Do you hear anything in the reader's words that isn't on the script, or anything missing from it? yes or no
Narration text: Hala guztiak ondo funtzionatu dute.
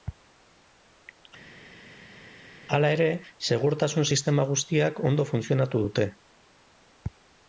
yes